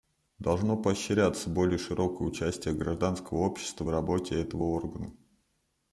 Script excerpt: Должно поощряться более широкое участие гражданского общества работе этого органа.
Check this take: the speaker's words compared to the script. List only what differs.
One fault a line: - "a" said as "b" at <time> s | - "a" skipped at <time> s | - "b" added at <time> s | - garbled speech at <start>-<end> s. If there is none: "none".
none